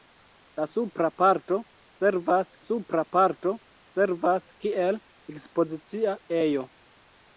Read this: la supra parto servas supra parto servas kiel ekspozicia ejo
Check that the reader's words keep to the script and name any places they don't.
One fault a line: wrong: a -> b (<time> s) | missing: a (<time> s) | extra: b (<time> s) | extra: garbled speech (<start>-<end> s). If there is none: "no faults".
no faults